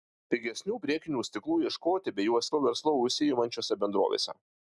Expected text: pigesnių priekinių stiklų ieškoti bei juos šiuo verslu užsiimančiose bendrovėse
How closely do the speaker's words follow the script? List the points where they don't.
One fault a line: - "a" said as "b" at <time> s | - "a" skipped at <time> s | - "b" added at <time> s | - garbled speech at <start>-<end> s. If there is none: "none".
none